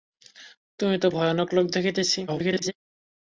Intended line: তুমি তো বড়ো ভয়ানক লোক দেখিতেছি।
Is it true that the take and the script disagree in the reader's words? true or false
true